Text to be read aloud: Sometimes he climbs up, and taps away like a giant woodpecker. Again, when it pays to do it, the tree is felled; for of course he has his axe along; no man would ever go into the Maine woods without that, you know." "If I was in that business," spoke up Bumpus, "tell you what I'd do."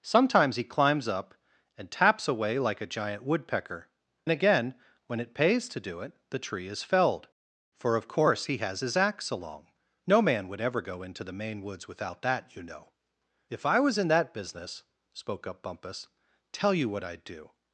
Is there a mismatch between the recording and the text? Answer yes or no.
no